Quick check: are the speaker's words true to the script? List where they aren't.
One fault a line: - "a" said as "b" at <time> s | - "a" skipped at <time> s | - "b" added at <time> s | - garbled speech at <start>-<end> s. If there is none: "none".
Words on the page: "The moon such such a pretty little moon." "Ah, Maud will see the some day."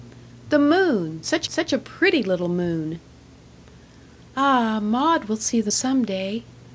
none